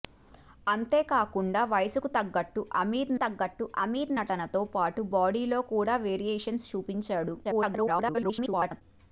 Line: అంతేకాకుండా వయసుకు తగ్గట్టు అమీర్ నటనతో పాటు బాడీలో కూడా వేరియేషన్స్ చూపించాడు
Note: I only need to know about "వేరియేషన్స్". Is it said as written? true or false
true